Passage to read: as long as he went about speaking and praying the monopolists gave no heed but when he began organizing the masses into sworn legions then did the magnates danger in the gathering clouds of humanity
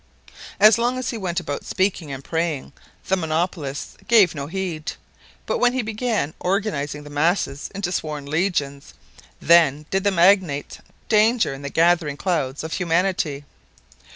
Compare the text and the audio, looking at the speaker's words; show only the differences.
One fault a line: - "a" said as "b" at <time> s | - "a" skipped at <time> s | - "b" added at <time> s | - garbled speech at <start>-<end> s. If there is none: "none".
none